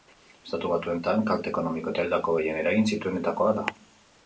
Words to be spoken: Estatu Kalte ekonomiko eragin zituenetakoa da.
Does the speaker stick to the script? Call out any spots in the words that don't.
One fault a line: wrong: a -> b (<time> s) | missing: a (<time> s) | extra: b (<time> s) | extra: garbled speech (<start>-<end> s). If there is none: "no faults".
extra: Batuetan (0.7 s)
extra: eta hildako gehien (1.9 s)